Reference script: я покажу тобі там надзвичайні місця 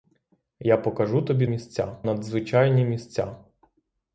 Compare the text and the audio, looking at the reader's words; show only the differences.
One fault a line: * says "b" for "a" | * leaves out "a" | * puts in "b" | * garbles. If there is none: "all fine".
* says "місця" for "там"